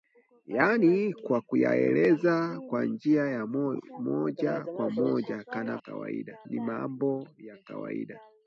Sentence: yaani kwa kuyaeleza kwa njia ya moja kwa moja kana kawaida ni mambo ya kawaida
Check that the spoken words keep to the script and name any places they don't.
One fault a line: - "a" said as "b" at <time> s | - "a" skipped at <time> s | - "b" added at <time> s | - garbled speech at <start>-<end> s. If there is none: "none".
none